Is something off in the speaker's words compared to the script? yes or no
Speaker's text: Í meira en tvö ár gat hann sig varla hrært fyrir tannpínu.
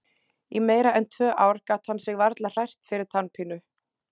no